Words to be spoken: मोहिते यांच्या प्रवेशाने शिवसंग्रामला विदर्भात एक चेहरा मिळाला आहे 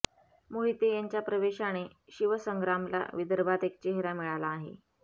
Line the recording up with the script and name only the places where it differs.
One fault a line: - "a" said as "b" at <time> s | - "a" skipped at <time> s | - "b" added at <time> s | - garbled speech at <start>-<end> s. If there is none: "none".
none